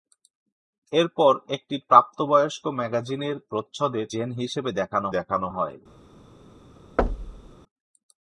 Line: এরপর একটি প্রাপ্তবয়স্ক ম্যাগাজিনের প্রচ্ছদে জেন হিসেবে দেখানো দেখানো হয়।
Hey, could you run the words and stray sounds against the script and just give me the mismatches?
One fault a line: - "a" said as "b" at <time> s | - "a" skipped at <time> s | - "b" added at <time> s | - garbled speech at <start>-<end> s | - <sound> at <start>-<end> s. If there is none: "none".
- thud at 7.0-7.6 s